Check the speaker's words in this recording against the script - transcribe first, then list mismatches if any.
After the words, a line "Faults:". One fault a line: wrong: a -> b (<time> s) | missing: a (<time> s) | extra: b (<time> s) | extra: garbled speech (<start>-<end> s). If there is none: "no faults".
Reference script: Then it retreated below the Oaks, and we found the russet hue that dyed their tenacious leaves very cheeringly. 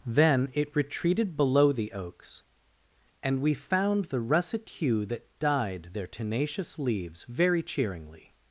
Then it retreated below the Oaks, and we found the russet hue that dyed their tenacious leaves very cheeringly.
Faults:
no faults